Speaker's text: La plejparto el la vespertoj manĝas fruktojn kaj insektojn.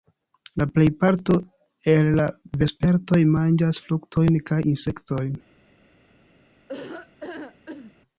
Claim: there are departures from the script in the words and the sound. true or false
true